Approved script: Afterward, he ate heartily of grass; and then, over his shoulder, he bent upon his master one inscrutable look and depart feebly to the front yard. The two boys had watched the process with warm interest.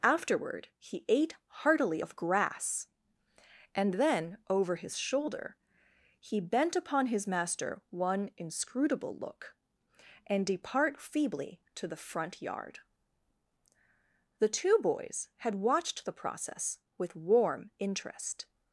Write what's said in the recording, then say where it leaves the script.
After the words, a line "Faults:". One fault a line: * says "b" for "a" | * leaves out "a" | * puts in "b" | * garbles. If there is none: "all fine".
Afterward, he ate heartily of grass; and then, over his shoulder, he bent upon his master one inscrutable look and depart feebly to the front yard. The two boys had watched the process with warm interest.
Faults:
all fine